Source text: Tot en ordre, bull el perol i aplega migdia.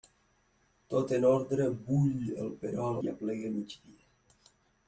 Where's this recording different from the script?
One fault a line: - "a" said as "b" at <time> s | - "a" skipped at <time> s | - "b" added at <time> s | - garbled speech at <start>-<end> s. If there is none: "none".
none